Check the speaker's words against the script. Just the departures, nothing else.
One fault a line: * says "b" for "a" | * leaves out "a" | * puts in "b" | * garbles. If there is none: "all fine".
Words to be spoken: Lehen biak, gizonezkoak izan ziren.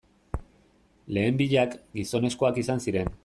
all fine